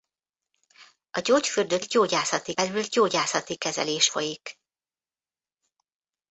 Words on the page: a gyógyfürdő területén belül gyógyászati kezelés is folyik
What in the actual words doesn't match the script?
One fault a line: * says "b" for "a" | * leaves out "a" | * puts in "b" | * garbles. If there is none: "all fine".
* says "gyógyászati" for "területén"
* leaves out "is"